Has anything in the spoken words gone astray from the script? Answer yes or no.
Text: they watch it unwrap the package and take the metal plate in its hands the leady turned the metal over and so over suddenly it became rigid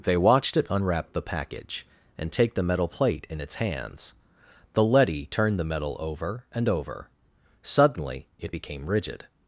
yes